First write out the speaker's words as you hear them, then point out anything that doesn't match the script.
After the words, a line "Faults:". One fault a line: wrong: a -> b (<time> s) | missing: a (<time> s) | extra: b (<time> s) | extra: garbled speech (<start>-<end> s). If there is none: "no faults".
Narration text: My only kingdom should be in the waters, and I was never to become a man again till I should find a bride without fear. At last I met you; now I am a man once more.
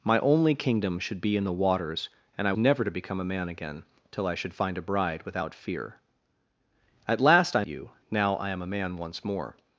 My only kingdom should be in the waters, and I never to become a man again till I should find a bride without fear. At last I you; now I am a man once more.
Faults:
missing: was (2.5 s)
missing: met (7.6 s)